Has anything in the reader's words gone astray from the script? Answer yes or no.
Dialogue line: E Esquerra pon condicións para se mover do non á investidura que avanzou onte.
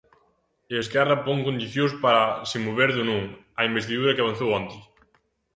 no